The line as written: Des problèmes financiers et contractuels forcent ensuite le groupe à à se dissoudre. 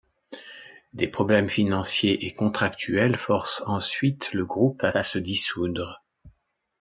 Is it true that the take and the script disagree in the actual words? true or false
false